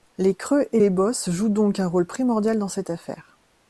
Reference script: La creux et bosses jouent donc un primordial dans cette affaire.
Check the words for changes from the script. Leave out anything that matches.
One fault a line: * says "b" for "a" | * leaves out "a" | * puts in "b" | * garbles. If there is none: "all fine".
* says "Les" for "La"
* puts in "les"
* puts in "rôle"